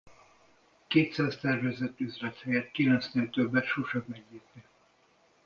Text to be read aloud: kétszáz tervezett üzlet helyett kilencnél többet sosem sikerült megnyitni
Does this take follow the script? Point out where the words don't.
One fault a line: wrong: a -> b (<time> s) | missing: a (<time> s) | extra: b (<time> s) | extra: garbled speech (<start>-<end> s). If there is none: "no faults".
missing: sikerült (4.0 s)